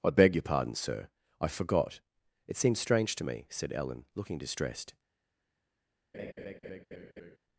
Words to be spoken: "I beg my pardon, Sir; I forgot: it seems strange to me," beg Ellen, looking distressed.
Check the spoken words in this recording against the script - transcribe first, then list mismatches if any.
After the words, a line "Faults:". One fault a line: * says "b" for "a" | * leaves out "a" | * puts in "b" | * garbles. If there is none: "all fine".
"I beg your pardon, Sir; I forgot: it seems strange to me," said Ellen, looking distressed.
Faults:
* says "your" for "my"
* says "said" for "beg"